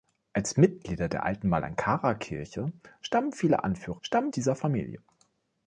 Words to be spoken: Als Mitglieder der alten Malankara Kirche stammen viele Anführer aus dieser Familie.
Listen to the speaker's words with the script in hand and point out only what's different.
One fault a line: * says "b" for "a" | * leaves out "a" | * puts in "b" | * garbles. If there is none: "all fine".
* says "stammen" for "aus"